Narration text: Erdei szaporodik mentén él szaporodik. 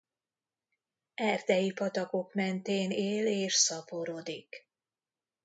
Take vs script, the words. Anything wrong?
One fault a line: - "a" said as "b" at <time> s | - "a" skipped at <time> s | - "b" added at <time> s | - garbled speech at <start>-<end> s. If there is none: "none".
- "szaporodik" said as "patakok" at 1.7 s
- "és" added at 3.3 s